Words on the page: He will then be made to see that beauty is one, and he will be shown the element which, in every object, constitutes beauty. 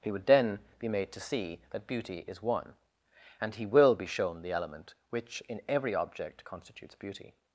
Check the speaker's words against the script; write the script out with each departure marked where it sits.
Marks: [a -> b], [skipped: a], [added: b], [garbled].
He [will -> would] then be made to see that beauty is one, and he will be shown the element which, in every object, constitutes beauty.